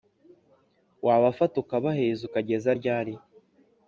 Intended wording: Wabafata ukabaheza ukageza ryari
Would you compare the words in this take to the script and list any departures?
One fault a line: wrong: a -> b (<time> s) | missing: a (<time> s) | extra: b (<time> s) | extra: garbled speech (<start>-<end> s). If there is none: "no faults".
no faults